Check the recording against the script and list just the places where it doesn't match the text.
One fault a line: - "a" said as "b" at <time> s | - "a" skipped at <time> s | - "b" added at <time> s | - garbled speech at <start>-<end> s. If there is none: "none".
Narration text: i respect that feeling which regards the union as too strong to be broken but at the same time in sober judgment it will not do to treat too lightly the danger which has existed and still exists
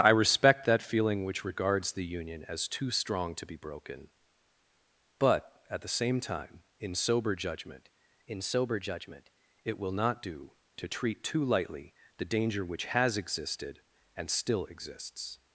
- "in sober judgment" added at 8.3 s